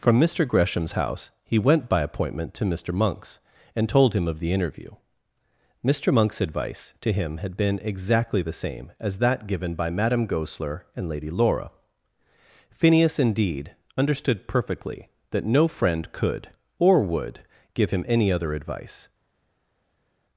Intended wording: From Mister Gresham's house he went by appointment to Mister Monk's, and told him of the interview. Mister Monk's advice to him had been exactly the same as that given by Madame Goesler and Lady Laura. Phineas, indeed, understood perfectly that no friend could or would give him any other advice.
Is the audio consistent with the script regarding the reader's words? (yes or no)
yes